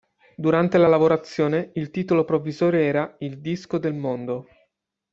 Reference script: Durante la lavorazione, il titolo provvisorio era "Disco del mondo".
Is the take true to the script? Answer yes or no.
no